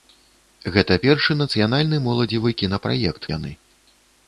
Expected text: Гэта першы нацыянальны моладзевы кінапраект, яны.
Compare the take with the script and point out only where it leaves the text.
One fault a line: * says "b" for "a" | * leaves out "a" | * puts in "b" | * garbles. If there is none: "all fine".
all fine